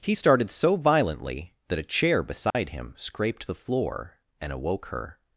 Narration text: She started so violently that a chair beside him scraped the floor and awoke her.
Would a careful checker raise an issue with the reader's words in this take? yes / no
yes